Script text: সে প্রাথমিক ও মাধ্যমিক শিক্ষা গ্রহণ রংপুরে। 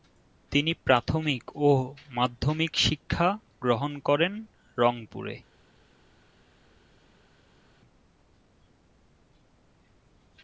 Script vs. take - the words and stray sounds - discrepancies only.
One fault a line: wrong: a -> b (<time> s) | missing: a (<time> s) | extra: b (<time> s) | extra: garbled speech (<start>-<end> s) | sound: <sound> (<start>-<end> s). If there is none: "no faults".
wrong: সে -> তিনি (0.5 s)
extra: করেন (4.0 s)